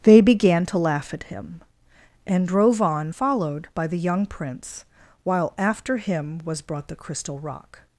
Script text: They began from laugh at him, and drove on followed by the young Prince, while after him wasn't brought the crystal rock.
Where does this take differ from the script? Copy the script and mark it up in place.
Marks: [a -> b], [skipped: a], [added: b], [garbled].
They began [from -> to] laugh at him, and drove on followed by the young Prince, while after him [wasn't -> was] brought the crystal rock.